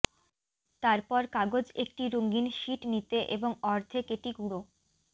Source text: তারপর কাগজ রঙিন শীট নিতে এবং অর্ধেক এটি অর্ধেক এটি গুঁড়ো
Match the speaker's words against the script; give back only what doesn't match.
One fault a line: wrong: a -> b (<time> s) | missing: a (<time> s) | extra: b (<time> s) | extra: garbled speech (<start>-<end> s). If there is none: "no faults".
extra: একটি (1.8 s)
missing: অর্ধেক এটি (4.3 s)